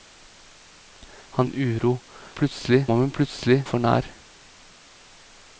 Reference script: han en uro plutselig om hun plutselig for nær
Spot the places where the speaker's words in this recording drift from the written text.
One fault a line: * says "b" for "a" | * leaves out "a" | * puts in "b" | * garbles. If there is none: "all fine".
all fine